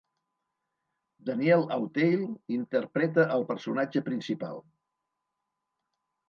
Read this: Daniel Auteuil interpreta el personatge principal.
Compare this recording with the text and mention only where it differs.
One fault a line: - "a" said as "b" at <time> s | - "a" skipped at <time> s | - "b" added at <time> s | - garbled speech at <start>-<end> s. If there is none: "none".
none